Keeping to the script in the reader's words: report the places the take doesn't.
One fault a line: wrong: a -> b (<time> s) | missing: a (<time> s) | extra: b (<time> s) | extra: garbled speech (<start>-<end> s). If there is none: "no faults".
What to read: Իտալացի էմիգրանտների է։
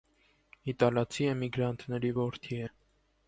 extra: որդի (2.2 s)